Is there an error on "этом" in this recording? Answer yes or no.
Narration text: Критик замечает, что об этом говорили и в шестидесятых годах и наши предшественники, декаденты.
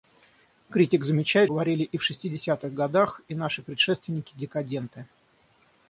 yes